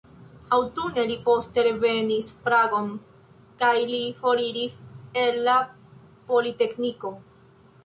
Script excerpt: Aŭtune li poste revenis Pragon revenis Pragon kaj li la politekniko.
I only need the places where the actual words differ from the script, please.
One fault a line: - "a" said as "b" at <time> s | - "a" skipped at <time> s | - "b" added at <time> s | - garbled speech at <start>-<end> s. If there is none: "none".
- "revenis Pragon kaj li" said as "kaj li foriris el" at 3.6 s